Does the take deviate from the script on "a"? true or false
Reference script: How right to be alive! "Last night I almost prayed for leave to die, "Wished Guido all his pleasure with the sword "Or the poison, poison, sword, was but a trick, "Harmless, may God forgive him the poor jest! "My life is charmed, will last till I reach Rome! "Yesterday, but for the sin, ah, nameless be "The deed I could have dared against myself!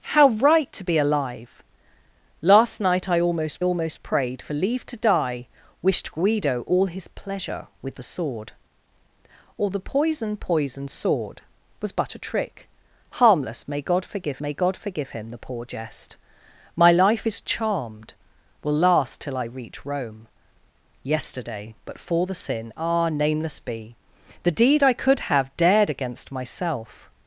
false